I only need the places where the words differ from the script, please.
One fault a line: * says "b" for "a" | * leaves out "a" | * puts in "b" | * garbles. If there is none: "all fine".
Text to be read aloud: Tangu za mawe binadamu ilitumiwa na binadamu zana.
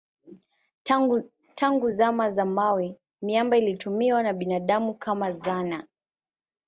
* puts in "zama"
* says "miamba" for "binadamu"
* puts in "kama"